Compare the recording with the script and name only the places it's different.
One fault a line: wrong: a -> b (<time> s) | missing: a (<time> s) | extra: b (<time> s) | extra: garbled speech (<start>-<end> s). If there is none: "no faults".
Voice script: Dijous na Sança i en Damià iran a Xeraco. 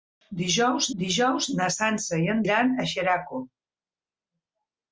extra: dijous (1.0 s)
missing: Damià (2.4 s)